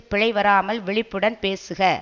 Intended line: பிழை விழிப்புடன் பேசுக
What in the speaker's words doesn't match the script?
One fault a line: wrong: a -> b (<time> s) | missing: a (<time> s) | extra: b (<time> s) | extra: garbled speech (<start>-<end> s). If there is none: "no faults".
extra: வராமல் (0.3 s)